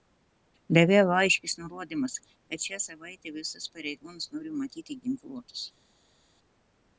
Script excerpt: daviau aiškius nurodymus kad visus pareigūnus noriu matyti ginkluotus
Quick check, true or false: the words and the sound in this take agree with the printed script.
false